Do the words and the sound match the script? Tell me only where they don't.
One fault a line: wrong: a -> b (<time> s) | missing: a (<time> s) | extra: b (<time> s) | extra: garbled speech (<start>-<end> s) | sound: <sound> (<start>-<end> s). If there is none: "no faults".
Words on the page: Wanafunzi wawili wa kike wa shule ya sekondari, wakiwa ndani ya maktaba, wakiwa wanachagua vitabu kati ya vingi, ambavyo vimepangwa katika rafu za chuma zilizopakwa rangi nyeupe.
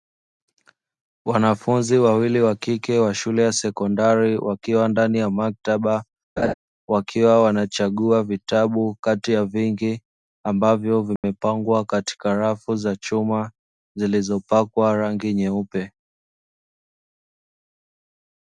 sound: laugh (6.4-6.5 s)
sound: dropout (11.2-11.2 s)